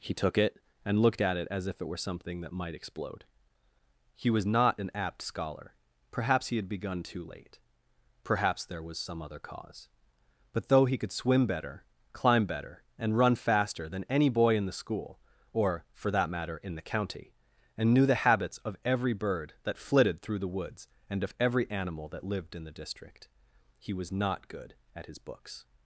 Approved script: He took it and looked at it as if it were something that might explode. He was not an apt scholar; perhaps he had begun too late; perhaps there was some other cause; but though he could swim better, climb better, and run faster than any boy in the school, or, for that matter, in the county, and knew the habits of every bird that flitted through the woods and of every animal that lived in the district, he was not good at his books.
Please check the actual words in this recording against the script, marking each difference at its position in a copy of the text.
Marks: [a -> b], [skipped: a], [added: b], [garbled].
He took it and looked at it as if it were something that might explode. He was not an apt scholar; perhaps he had begun too late; perhaps there was some other cause; but though he could swim better, climb better, and run faster than any boy in the school, or, for that matter, in the county, and knew the habits of every bird that flitted through the woods and of every animal that lived in the district, he was not good at his books.